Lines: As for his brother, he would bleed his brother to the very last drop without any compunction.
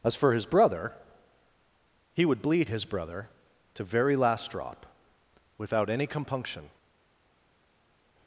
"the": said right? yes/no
no